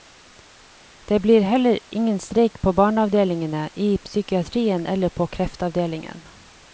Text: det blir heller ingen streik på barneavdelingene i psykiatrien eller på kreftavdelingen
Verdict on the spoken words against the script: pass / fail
pass